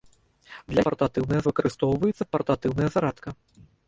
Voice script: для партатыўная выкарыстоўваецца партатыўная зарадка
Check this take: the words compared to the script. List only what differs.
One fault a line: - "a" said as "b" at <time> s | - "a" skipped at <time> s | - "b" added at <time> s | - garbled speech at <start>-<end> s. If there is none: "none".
none